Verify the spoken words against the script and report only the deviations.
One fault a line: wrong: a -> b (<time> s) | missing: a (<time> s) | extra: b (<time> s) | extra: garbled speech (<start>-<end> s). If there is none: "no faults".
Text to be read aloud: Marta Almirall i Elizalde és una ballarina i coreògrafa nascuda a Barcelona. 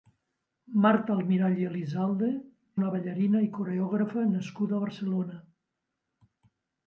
missing: és (2.3 s)